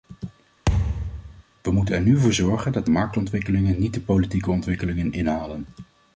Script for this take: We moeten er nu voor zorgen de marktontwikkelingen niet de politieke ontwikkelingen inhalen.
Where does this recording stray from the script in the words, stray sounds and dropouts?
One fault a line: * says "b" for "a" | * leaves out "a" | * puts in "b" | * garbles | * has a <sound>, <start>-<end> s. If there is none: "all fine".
* has a thud, 0.7-1.4 s
* puts in "dat"